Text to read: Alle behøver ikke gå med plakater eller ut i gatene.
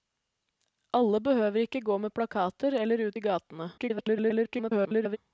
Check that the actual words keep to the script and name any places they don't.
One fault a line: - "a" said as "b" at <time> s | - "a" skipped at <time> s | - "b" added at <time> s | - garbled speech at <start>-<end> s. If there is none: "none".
- garbled speech at 3.8-5.2 s